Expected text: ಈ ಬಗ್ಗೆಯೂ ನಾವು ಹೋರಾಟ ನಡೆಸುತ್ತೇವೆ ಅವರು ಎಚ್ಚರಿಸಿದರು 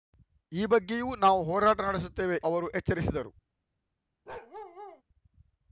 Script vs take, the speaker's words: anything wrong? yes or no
no